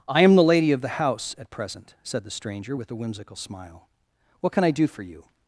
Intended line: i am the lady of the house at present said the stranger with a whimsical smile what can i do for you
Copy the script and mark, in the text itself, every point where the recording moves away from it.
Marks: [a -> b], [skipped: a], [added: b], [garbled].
i am the lady of the house at present said the stranger with a whimsical smile what can i do for you